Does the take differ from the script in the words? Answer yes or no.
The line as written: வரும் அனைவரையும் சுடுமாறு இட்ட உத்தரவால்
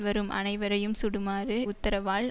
yes